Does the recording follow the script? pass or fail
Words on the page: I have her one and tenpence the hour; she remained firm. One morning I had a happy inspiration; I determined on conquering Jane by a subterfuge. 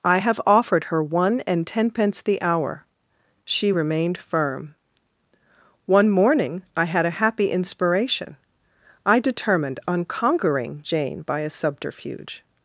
fail